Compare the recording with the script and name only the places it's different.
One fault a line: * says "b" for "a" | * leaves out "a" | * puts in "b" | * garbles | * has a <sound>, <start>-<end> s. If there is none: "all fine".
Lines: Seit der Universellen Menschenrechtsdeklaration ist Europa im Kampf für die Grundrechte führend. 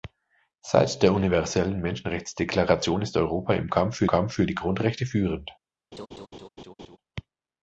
* puts in "Kampf für"
* has a laugh, 5.9-7.0 s